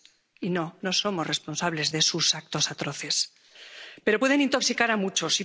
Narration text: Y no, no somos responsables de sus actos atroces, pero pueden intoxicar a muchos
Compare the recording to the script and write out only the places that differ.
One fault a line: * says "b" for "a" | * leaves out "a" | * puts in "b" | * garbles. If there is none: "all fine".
all fine